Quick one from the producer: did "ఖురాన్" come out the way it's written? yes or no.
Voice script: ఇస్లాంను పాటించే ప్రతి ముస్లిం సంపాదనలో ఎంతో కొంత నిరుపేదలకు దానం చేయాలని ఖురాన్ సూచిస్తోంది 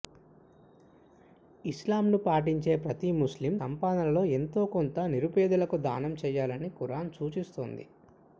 yes